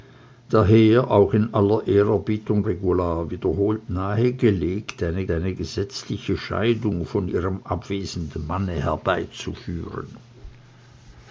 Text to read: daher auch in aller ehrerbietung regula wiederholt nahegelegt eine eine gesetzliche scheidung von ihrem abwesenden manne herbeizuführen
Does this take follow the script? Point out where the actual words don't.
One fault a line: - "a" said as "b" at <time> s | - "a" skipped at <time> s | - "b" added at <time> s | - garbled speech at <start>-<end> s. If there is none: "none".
none